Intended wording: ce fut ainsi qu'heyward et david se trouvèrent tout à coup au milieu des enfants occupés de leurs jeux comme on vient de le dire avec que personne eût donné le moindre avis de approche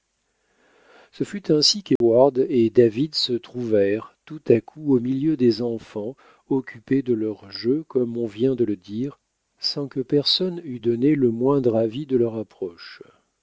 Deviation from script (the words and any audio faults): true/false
true